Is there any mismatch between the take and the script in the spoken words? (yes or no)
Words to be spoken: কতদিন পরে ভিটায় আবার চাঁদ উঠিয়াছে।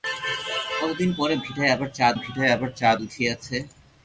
yes